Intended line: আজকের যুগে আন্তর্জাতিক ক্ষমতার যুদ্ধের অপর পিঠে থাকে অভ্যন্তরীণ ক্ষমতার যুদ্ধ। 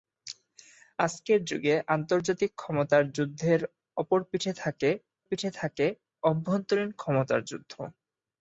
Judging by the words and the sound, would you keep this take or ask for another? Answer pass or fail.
fail